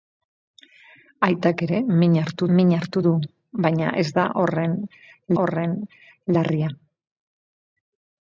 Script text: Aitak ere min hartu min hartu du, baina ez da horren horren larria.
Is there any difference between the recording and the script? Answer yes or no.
no